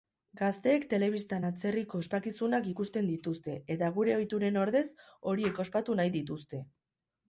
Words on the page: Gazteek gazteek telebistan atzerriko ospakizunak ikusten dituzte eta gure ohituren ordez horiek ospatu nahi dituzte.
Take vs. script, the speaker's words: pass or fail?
fail